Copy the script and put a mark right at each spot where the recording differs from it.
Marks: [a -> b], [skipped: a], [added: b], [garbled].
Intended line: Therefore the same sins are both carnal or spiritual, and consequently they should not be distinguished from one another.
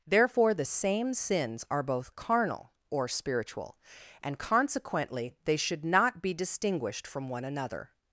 Therefore the same sins are both carnal or spiritual, and consequently they should not be distinguished from one another.